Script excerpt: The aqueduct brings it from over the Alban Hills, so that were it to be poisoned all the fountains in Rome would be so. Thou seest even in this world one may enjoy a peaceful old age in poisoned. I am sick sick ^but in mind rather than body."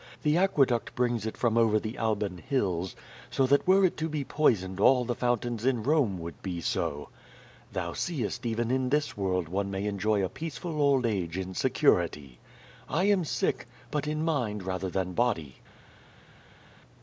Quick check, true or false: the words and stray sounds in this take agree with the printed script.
false